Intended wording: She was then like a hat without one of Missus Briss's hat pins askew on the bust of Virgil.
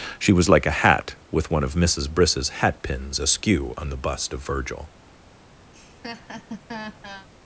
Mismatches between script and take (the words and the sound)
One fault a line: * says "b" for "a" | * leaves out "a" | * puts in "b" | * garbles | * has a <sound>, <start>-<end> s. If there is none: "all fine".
* leaves out "then"
* says "with" for "without"
* has a laugh, 5.7-7.3 s